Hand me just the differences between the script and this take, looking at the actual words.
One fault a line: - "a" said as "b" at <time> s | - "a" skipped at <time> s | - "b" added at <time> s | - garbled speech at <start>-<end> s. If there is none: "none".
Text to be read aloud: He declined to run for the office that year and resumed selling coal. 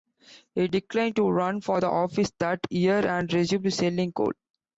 none